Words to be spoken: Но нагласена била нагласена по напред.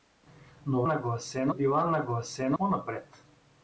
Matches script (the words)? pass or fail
pass